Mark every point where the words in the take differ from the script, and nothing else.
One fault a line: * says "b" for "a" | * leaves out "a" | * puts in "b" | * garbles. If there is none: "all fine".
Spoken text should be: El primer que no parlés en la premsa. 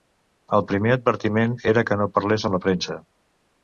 * puts in "advertiment era"
* says "amb" for "en"